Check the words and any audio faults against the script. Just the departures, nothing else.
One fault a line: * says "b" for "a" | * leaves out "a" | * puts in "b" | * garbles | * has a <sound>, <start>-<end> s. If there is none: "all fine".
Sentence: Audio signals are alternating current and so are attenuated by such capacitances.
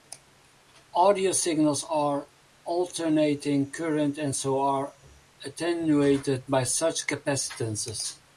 all fine